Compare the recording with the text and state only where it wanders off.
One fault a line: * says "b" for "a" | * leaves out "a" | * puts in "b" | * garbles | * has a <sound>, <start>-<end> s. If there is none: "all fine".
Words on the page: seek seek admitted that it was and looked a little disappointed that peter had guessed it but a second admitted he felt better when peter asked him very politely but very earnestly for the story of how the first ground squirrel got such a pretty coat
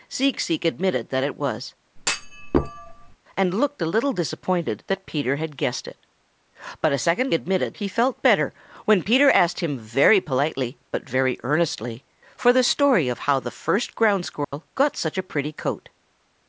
* has a thud, 2.0-3.2 s
* has a dropout, 14.4-14.5 s